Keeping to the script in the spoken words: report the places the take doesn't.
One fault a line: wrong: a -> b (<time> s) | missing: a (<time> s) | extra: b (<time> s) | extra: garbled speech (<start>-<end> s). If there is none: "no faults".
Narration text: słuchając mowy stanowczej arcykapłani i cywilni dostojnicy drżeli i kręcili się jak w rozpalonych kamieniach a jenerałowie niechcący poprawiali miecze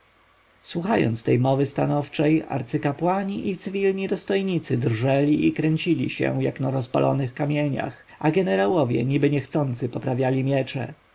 extra: tej (1.2 s)
wrong: w -> na (6.6 s)
extra: niby (9.1 s)